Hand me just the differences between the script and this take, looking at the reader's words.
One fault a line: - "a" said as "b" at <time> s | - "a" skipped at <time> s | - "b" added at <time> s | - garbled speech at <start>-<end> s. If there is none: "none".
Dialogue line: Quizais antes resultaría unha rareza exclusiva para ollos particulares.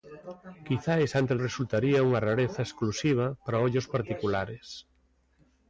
none